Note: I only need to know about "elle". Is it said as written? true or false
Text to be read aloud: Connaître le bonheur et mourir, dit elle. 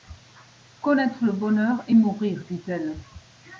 true